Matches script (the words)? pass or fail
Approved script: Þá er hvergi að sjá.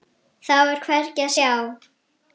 pass